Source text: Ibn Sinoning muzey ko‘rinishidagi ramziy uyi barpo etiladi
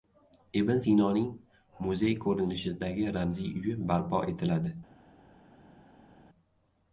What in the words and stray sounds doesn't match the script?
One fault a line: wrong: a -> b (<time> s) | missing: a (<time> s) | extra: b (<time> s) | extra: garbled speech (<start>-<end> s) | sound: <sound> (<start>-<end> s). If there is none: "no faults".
no faults